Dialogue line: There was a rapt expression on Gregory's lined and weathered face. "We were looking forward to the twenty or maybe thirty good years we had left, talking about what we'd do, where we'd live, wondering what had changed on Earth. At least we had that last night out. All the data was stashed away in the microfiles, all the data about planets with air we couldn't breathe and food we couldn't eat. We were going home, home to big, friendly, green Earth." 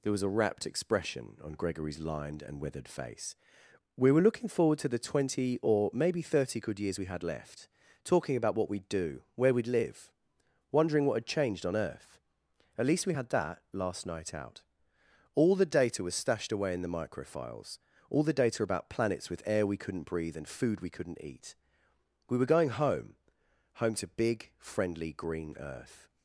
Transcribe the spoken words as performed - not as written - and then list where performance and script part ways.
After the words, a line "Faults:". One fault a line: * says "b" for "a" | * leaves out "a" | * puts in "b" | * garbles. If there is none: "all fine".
There was a rapt expression on Gregory's lined and weathered face. "We were looking forward to the twenty or maybe thirty good years we had left, talking about what we'd do, where we'd live, wondering what had changed on Earth. At least we had that last night out. All the data was stashed away in the microfiles, all the data about planets with air we couldn't breathe and food we couldn't eat. We were going home, home to big, friendly, green Earth."
Faults:
all fine